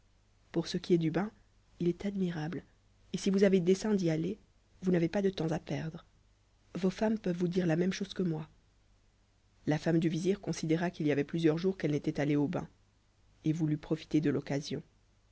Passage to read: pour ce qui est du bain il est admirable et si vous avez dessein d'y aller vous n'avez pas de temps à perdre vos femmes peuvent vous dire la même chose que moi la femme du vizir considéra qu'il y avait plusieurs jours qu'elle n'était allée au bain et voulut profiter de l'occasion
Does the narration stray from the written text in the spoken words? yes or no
no